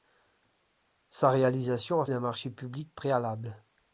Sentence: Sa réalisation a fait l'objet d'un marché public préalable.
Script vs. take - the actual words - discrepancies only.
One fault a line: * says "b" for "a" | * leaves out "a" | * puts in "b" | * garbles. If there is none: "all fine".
* leaves out "fait l'objet"